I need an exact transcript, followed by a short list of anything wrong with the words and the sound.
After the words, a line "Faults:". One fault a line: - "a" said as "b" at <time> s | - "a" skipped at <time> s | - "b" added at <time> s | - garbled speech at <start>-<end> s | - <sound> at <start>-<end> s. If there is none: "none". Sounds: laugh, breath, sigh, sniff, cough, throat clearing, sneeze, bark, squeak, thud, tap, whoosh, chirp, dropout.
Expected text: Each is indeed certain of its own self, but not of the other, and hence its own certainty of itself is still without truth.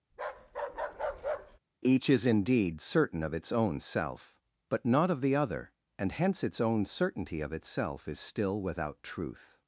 Each is indeed certain of its own self, but not of the other, and hence its own certainty of itself is still without truth.
Faults:
- bark at 0.1-1.6 s